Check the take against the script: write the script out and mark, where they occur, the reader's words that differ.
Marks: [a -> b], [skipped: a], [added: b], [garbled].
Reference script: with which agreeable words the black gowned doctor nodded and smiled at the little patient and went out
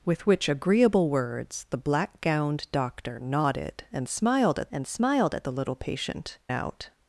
with which agreeable words the black gowned doctor nodded and smiled at [added: and smiled at] the little patient [skipped: and went] out